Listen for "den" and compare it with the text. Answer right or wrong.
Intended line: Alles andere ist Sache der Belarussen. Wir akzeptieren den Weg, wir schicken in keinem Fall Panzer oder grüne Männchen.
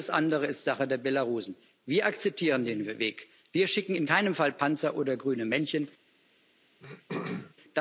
right